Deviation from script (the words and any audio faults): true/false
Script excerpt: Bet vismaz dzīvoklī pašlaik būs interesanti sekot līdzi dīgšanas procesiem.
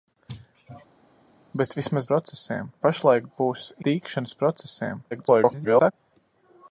true